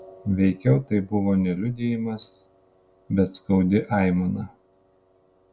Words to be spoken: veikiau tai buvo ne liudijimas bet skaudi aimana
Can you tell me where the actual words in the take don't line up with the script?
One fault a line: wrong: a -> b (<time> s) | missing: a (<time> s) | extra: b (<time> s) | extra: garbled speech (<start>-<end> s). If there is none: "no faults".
no faults